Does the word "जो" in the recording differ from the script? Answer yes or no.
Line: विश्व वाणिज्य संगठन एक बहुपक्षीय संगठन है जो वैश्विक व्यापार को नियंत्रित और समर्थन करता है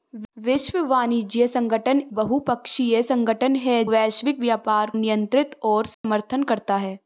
yes